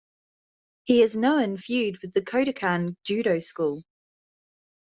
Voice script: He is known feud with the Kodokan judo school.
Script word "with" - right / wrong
right